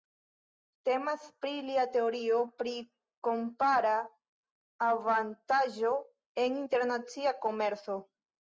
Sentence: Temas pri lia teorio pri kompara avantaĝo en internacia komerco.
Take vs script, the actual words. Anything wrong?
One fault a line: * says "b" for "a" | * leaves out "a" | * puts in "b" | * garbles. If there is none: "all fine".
all fine